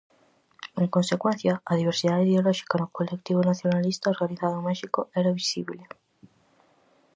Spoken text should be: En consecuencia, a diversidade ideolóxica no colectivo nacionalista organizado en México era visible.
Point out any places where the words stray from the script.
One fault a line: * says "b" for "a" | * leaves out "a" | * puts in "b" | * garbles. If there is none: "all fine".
all fine